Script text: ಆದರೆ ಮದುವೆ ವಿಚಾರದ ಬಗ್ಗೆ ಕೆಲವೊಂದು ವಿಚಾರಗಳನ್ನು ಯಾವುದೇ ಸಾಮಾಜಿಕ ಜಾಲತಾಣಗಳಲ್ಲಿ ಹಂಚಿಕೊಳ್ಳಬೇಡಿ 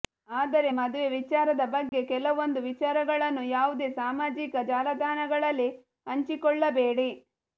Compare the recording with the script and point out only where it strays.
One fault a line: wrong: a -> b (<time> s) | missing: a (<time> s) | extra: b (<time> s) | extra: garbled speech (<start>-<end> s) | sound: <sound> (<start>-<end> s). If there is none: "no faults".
sound: dropout (1.9-1.9 s)